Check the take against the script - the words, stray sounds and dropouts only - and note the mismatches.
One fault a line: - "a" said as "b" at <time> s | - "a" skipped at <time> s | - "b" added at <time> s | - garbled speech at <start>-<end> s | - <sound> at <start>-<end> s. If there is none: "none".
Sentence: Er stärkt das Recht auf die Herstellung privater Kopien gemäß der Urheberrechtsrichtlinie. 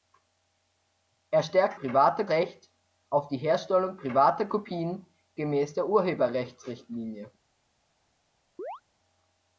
- "das" said as "privater" at 1.8 s
- chirp at 8.6-8.8 s